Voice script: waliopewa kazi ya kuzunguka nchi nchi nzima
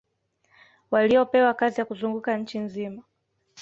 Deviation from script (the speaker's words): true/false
true